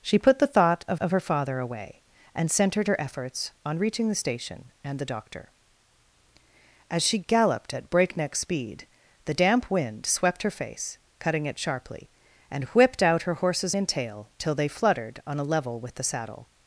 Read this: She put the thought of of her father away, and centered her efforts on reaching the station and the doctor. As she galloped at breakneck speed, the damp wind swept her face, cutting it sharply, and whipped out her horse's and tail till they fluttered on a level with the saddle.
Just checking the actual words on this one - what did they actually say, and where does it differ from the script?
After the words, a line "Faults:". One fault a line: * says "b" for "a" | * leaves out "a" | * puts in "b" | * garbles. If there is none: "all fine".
She put the thought of of her father away, and centered her efforts on reaching the station and the doctor. As she galloped at breakneck speed, the damp wind swept her face, cutting it sharply, and whipped out her horse's and tail till they fluttered on a level with the saddle.
Faults:
all fine